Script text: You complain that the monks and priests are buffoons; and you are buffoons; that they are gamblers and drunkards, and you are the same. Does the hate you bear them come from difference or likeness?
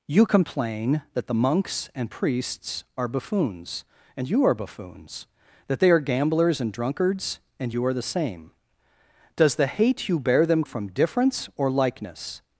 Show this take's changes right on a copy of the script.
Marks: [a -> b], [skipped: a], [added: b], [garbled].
You complain that the monks and priests are buffoons; and you are buffoons; that they are gamblers and drunkards, and you are the same. Does the hate you bear them [skipped: come] from difference or likeness?